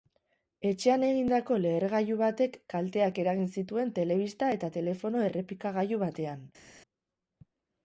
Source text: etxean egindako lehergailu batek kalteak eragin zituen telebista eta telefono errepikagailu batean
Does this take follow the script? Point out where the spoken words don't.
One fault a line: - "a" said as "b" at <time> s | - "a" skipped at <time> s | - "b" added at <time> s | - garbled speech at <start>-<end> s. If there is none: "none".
none